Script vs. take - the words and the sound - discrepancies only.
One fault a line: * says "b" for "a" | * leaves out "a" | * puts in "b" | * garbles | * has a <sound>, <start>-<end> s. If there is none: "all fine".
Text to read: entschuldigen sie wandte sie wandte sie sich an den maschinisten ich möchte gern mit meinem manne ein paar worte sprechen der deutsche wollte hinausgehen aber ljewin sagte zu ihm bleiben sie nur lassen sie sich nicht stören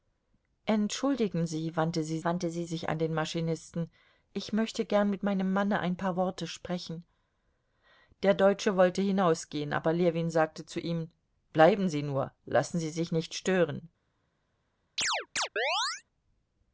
* has a chirp, 15.0-16.0 s